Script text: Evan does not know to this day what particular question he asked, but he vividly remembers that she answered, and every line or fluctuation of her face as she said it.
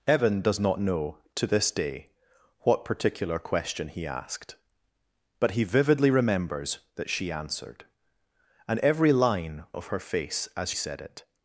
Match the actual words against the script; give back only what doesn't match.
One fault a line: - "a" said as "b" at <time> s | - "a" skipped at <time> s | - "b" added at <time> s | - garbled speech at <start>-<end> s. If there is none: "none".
- "or fluctuation" skipped at 9.6 s
- "she" skipped at 10.7 s